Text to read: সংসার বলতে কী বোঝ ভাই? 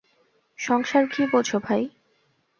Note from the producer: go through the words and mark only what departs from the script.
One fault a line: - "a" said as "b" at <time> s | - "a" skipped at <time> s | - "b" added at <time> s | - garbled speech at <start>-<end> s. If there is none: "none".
- "বলতে" skipped at 1.0 s